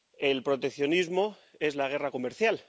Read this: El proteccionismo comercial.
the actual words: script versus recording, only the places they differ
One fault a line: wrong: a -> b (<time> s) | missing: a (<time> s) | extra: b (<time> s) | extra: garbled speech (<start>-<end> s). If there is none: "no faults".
extra: es la guerra (1.6 s)